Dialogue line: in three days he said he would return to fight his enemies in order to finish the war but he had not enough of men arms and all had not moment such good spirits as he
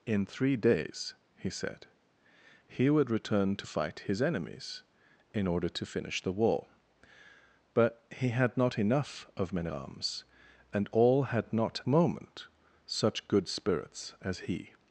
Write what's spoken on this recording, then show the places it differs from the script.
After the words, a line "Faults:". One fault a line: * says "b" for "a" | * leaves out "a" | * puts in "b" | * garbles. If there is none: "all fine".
in three days he said he would return to fight his enemies in order to finish the war but he had not enough of men arms and all had not moment such good spirits as he
Faults:
all fine